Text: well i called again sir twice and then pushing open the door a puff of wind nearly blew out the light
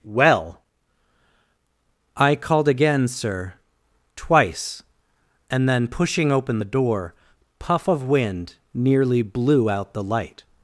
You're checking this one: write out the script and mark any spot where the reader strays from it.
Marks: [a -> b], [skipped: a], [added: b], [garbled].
well i called again sir twice and then pushing open the door [skipped: a] puff of wind nearly blew out the light